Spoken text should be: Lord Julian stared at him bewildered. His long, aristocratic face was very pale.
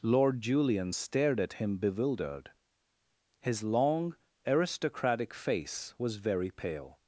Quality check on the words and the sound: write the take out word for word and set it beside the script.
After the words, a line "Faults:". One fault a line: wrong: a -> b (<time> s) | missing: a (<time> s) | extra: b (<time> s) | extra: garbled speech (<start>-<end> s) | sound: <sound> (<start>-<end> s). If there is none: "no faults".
Lord Julian stared at him bewildered. His long, aristocratic face was very pale.
Faults:
no faults